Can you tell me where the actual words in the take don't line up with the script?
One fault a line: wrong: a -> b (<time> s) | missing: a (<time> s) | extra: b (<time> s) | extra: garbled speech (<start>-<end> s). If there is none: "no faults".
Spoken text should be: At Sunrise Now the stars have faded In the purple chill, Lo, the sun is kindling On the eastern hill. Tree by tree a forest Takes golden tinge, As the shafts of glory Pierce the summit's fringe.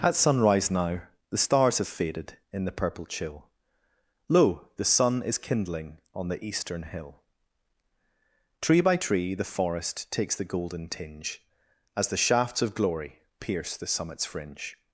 wrong: a -> the (9.3 s)
extra: the (10.4 s)